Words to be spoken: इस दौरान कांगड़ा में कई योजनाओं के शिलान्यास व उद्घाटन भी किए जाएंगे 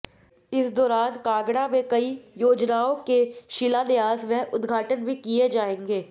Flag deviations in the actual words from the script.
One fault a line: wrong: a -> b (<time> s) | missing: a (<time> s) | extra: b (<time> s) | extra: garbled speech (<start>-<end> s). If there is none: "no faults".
no faults